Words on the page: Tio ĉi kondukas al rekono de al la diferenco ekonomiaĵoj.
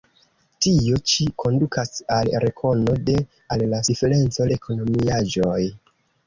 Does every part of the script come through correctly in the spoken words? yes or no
yes